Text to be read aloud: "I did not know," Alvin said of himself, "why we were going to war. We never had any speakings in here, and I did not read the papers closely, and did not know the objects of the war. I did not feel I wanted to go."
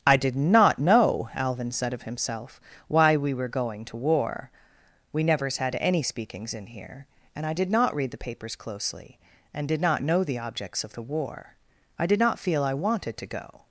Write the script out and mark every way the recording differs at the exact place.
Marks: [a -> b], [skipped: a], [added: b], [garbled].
"I did not know," Alvin said of himself, "why we were going to war. We [never -> nevers] had any speakings in here, and I did not read the papers closely, and did not know the objects of the war. I did not feel I wanted to go."